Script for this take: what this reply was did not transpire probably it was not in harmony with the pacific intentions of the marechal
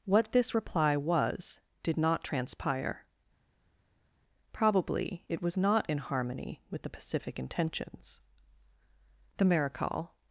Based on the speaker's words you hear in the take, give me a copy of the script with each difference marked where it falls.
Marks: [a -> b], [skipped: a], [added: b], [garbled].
what this reply was did not transpire probably it was not in harmony with the pacific intentions [skipped: of] the marechal